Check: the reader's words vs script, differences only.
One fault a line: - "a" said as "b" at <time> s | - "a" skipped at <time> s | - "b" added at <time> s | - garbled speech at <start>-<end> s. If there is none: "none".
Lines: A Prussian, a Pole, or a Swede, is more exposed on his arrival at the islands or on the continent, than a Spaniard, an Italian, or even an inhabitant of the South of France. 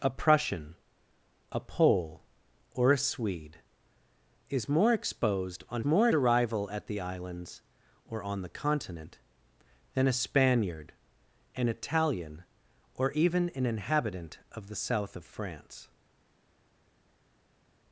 - "his" said as "more" at 5.8 s